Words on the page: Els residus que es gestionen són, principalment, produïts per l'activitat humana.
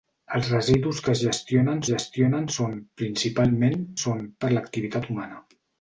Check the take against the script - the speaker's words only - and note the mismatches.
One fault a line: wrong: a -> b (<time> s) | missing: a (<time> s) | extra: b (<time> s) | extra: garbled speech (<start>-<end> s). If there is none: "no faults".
extra: gestionen (1.9 s)
wrong: produïts -> són (4.0 s)